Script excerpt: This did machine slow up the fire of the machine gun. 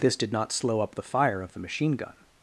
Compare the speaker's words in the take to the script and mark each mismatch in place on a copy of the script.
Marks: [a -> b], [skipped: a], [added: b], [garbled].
This did [machine -> not] slow up the fire of the machine gun.